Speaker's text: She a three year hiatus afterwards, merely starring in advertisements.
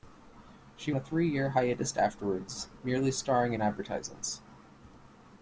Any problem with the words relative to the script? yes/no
no